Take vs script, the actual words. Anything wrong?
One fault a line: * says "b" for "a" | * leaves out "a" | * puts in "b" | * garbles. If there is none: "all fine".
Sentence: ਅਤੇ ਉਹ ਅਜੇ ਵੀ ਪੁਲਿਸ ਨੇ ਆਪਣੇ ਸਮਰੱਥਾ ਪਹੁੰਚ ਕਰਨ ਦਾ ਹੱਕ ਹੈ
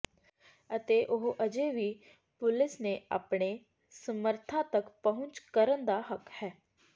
* puts in "ਤੱਕ"